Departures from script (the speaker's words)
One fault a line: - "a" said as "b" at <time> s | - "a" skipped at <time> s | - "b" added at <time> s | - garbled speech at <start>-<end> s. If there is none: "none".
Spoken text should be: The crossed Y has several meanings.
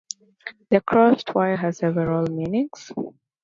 none